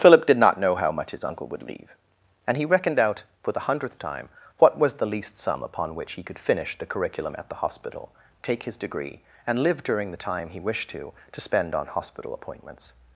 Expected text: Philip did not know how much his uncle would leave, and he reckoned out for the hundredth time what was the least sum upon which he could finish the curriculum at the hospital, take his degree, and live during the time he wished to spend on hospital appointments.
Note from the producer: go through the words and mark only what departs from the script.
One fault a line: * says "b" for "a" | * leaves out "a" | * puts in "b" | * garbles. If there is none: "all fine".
* puts in "to"